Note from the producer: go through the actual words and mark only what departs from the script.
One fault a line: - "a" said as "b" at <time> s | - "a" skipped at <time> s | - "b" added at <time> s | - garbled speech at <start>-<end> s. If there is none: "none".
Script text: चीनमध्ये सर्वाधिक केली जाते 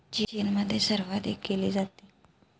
none